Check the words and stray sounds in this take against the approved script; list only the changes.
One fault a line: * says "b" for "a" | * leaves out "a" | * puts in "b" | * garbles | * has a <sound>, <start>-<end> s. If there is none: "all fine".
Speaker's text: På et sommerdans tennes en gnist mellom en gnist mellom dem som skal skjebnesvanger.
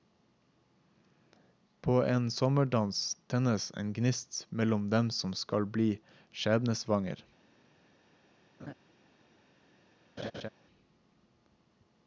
* says "en" for "et"
* leaves out "en gnist mellom"
* puts in "bli"
* has a laugh, 8.6-8.7 s
* has a laugh, 10.2-10.5 s